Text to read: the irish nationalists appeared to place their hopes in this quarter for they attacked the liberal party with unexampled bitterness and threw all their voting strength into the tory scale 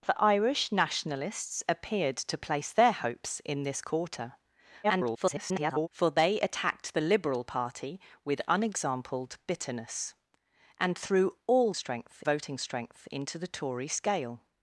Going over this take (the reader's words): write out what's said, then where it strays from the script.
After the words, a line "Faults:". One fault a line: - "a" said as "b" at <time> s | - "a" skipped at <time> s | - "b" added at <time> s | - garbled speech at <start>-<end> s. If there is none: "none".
the irish nationalists appeared to place their hopes in this quarter [garbled] for they attacked the liberal party with unexampled bitterness and threw all strength voting strength into the tory scale
Faults:
- garbled speech at 4.8-5.9 s
- "their" said as "strength" at 11.7 s